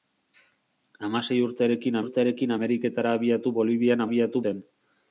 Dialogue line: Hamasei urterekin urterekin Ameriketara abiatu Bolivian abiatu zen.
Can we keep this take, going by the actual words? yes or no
yes